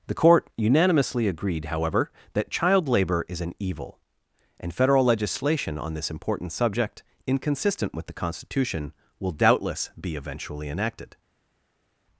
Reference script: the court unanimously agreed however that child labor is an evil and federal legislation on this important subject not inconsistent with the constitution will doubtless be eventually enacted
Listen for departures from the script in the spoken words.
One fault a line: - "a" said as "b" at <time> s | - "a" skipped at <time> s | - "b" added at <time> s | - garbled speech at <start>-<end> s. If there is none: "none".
- "not" skipped at 7.0 s